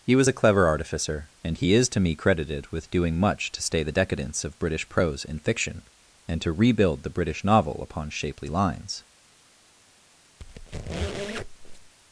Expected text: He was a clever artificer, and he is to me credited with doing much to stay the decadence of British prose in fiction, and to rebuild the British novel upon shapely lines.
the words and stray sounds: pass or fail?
fail